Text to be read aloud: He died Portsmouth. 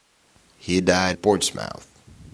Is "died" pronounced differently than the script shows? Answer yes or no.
no